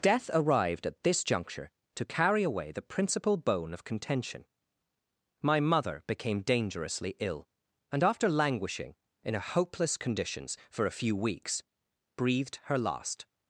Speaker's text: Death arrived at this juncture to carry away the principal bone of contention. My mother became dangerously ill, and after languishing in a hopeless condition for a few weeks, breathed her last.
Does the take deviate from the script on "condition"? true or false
true